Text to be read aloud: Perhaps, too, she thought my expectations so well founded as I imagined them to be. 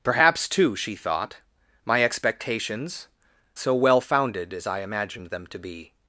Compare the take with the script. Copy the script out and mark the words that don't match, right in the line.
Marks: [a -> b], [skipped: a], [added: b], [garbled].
Perhaps, too, she thought my expectations so well founded as I imagined them to be.